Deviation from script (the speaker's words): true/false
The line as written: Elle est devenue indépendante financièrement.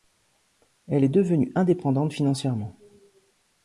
false